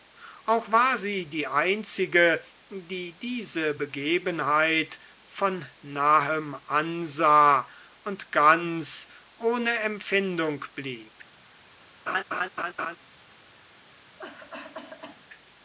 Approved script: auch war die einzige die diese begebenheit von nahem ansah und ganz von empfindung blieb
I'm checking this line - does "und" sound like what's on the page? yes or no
yes